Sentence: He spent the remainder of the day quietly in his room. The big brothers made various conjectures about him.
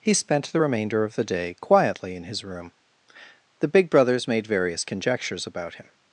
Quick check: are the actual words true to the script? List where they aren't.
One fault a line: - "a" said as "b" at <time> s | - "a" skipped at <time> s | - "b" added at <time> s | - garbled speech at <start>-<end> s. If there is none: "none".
none